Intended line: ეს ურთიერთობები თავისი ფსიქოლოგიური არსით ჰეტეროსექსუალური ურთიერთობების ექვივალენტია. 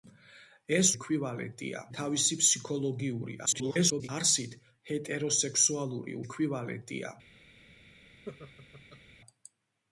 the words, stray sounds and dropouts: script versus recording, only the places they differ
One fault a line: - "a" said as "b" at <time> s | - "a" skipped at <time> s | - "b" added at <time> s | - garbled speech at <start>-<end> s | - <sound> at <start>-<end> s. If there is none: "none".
- "ურთიერთობები" said as "ექვივალენტია" at 1.0 s
- garbled speech at 3.5-4.1 s
- "ურთიერთობების" skipped at 6.2 s
- laugh at 8.3-9.0 s